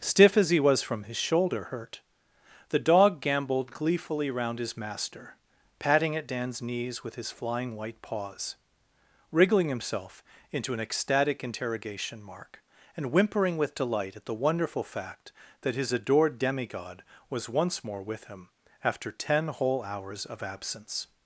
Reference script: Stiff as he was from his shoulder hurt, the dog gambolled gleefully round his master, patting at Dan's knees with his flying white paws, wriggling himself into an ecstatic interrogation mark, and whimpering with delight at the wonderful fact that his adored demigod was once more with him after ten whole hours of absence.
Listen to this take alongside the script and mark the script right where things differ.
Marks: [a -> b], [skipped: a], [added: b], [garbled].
Stiff as he was from his shoulder hurt, the dog gambolled gleefully round his master, patting at Dan's knees with his flying white paws, wriggling himself into an ecstatic interrogation mark, and whimpering with delight at the wonderful fact that his adored demigod was once more with him after ten whole hours of absence.